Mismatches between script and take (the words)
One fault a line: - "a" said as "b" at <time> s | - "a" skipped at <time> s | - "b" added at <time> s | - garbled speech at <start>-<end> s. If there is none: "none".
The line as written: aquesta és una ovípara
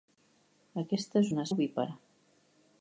none